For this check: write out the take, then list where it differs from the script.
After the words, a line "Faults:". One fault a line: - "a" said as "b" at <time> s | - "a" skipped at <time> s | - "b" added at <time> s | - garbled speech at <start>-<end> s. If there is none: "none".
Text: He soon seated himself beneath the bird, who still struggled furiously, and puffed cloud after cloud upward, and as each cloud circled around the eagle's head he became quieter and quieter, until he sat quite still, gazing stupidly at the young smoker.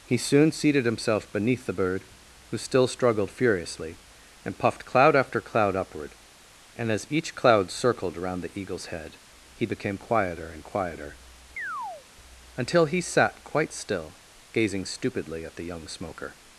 He soon seated himself beneath the bird, who still struggled furiously, and puffed cloud after cloud upward, and as each cloud circled around the eagle's head he became quieter and quieter, until he sat quite still, gazing stupidly at the young smoker.
Faults:
none